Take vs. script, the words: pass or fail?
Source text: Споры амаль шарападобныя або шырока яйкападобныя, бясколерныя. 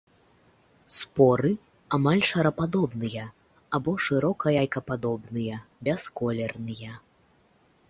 pass